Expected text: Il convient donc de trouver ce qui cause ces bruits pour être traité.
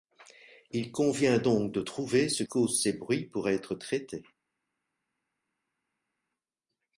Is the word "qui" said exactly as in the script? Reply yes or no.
no